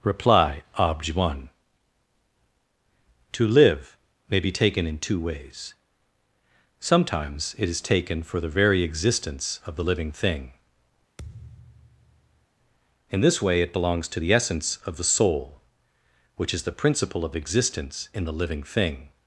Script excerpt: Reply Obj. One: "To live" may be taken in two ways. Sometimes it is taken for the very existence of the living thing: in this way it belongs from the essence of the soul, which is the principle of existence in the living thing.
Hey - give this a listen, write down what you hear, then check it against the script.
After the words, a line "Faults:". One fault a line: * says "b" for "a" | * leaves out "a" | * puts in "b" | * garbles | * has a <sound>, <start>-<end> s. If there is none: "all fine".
Reply Obj. One: "To live" may be taken in two ways. Sometimes it is taken for the very existence of the living thing: in this way it belongs to the essence of the soul, which is the principle of existence in the living thing.
Faults:
* has a thud, 11.2-12.5 s
* says "to" for "from"